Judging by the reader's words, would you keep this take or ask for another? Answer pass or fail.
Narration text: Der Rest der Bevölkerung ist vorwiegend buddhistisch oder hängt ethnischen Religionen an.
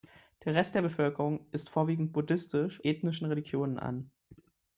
fail